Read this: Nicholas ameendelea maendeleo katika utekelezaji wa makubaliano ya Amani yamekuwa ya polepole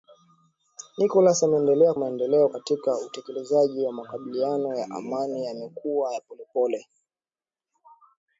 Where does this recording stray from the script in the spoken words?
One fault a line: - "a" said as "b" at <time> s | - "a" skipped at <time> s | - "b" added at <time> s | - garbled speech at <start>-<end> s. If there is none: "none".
none